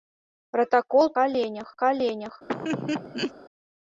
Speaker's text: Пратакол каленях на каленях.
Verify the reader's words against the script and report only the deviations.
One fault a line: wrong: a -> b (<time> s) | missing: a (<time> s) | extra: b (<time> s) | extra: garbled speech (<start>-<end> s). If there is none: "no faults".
no faults